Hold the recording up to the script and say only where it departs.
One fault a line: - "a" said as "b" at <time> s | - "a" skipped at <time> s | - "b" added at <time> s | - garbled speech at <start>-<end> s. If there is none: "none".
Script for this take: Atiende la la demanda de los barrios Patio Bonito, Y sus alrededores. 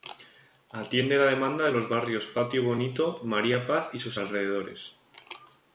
- "la" skipped at 1.2 s
- "María Paz" added at 3.2 s